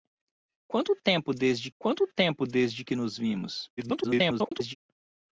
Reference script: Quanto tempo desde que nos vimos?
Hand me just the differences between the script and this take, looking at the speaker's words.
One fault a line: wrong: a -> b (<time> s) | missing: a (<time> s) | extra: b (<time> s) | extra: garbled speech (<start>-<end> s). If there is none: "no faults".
extra: quanto tempo desde (1.8 s)
extra: garbled speech (3.8-4.8 s)